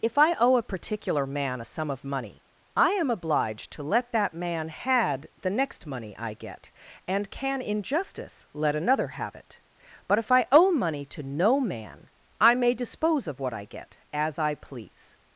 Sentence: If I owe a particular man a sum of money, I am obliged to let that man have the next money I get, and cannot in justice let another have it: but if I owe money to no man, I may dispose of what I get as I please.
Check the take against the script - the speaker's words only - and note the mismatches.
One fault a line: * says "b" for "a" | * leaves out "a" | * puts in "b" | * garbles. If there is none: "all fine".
* says "had" for "have"
* says "can" for "cannot"